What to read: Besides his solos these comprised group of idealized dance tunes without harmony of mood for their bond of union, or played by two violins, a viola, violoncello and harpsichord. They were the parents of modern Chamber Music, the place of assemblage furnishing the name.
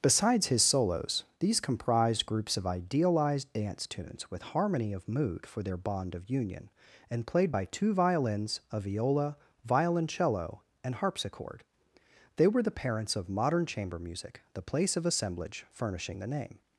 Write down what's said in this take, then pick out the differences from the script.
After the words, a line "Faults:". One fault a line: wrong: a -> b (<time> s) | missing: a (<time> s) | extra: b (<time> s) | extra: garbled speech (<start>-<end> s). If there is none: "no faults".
Besides his solos these comprised groups of idealized dance tunes with harmony of mood for their bond of union, and played by two violins, a viola, violoncello and harpsichord. They were the parents of modern Chamber Music, the place of assemblage furnishing the name.
Faults:
wrong: group -> groups (2.2 s)
wrong: without -> with (4.3 s)
wrong: or -> and (7.1 s)